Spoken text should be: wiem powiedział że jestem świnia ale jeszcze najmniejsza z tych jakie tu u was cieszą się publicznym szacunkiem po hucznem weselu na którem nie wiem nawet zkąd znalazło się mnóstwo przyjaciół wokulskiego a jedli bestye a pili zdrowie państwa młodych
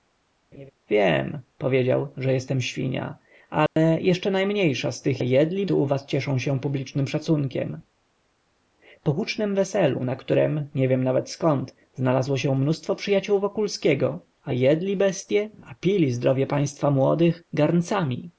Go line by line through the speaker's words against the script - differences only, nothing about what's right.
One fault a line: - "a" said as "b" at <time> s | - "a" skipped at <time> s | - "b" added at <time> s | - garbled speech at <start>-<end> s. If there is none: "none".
- "jakie" said as "jedli" at 5.2 s